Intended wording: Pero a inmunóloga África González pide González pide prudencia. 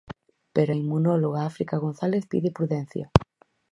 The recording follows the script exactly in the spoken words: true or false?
false